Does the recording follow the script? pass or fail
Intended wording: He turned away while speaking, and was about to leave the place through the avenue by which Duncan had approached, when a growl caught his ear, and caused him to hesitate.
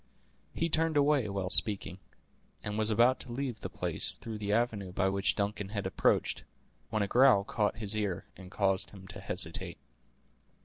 pass